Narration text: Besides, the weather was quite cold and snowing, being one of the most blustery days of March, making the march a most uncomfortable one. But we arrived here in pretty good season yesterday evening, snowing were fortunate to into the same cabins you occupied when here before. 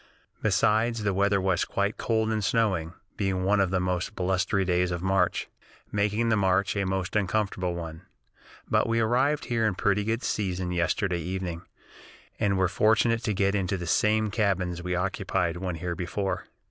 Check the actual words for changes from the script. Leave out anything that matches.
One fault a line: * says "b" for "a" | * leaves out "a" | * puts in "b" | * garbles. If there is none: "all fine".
* says "and" for "snowing"
* puts in "get"
* says "we" for "you"